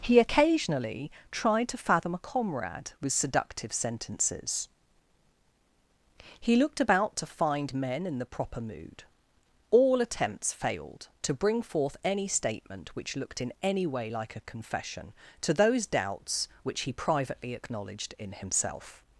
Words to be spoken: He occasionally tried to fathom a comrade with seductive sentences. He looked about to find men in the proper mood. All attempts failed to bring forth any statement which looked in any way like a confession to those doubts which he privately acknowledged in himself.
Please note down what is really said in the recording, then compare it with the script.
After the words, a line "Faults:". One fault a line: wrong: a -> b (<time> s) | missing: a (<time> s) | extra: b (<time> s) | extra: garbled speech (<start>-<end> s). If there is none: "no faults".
He occasionally tried to fathom a comrade with seductive sentences. He looked about to find men in the proper mood. All attempts failed to bring forth any statement which looked in any way like a confession to those doubts which he privately acknowledged in himself.
Faults:
no faults